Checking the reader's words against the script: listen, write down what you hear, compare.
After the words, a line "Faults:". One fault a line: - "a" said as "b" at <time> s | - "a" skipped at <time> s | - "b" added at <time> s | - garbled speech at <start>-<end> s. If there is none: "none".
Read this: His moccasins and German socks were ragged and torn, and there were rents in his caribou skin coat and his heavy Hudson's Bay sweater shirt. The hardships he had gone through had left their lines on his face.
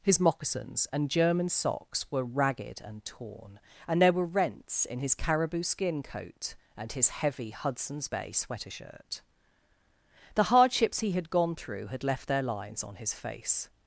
His moccasins and German socks were ragged and torn, and there were rents in his caribou skin coat and his heavy Hudson's Bay sweater shirt. The hardships he had gone through had left their lines on his face.
Faults:
none